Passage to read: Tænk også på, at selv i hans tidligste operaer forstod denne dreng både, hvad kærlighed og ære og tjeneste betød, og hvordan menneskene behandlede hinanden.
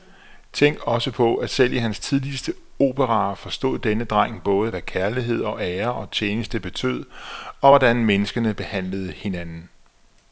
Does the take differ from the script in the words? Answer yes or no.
no